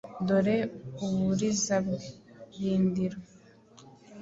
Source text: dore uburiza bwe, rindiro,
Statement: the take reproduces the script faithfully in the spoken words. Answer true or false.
true